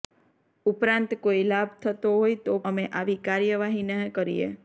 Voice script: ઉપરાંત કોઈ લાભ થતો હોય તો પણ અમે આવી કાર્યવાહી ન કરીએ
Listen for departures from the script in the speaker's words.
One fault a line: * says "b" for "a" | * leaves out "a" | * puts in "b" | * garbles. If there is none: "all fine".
* leaves out "પણ"